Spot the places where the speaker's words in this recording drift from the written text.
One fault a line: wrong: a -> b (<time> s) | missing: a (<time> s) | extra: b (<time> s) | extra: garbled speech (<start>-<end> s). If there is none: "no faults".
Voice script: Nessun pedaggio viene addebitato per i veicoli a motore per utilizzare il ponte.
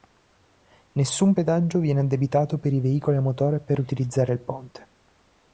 no faults